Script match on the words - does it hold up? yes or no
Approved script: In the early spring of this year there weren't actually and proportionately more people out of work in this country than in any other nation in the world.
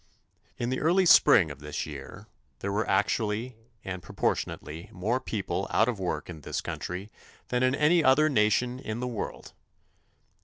no